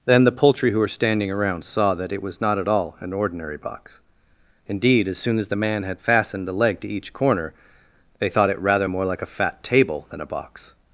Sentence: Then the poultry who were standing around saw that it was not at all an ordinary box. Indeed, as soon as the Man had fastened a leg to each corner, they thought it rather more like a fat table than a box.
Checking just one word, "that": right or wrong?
right